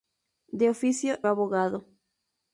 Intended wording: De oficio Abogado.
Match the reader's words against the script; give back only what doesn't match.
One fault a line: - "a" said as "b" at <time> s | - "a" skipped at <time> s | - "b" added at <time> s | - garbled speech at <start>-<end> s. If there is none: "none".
none